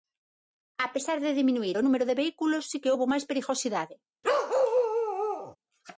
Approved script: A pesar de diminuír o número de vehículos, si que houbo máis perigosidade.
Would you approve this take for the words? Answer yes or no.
yes